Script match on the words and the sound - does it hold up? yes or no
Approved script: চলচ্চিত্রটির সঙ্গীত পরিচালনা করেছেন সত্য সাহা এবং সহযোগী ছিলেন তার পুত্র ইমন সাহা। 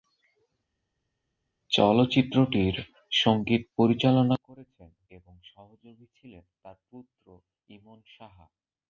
no